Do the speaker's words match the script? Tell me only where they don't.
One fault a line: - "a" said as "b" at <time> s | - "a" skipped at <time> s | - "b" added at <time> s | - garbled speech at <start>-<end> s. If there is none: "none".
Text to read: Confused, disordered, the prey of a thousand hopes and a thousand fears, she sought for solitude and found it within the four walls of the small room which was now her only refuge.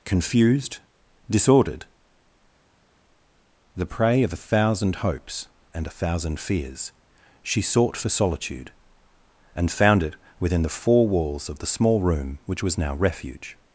- "her only" skipped at 12.9 s